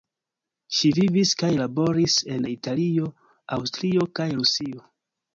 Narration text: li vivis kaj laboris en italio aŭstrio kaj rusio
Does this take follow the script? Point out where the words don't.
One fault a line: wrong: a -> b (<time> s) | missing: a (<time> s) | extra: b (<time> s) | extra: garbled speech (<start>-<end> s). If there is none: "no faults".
wrong: li -> ŝi (0.8 s)